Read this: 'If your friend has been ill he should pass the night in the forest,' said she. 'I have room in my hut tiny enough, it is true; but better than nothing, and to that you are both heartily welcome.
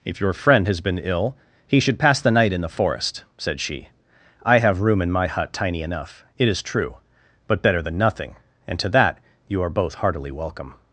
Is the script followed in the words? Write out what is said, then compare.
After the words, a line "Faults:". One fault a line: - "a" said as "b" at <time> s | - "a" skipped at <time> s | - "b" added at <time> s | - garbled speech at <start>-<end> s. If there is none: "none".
'If your friend has been ill he should pass the night in the forest,' said she. 'I have room in my hut tiny enough, it is true; but better than nothing, and to that you are both heartily welcome.
Faults:
none